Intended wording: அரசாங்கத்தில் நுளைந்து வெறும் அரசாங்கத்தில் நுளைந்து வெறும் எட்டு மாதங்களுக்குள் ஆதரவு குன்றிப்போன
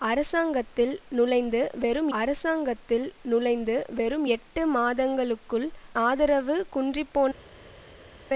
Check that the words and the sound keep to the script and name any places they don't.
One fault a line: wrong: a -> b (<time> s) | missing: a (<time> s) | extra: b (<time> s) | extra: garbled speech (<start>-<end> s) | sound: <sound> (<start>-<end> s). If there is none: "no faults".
no faults